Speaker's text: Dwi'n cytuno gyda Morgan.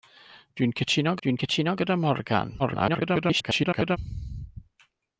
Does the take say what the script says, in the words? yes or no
no